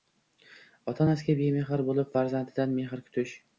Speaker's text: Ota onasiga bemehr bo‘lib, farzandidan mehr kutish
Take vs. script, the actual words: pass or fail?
pass